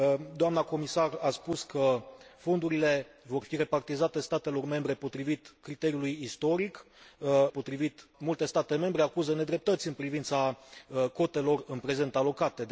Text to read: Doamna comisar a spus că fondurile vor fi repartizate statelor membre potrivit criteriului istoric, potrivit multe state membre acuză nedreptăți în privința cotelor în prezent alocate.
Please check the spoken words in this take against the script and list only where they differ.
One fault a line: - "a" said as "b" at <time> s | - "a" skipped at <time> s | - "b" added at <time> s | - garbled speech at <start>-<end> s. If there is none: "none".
none